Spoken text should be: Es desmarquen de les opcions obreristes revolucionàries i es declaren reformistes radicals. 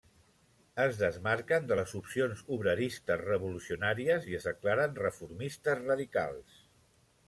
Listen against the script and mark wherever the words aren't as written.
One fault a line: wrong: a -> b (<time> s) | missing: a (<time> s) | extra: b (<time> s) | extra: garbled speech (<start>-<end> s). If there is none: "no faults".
no faults